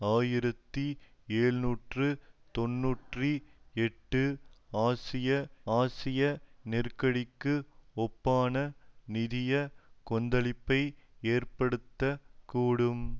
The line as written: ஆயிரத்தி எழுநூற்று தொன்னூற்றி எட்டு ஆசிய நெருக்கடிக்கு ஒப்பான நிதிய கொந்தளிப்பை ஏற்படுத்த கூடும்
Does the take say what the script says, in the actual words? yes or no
no